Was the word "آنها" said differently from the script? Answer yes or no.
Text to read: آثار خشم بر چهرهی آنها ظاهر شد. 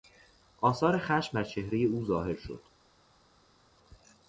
yes